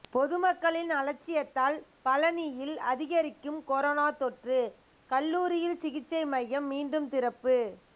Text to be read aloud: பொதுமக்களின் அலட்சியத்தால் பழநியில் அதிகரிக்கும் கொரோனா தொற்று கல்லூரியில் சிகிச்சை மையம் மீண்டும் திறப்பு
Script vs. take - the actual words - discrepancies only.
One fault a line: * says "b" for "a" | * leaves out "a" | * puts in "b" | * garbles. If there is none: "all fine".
all fine